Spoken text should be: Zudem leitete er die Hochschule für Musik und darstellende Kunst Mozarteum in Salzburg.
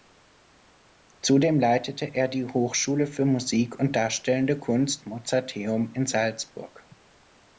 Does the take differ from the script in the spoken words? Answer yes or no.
no